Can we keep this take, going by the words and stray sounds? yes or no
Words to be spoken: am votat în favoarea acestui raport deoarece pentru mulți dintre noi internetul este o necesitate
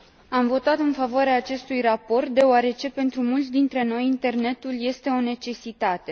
yes